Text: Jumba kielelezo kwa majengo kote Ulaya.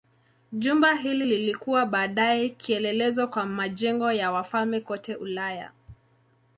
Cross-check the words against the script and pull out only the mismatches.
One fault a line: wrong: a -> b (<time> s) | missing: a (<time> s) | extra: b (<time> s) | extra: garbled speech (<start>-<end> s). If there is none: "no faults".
extra: hili lilikuwa baadaye (0.9 s)
extra: ya wafalme (4.1 s)